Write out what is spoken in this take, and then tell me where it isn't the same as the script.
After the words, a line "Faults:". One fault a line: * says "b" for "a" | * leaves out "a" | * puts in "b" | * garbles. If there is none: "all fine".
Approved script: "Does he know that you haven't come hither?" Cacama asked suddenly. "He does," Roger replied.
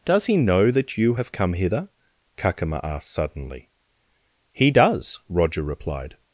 "Does he know that you have come hither?" Cacama asked suddenly. "He does," Roger replied.
Faults:
* says "have" for "haven't"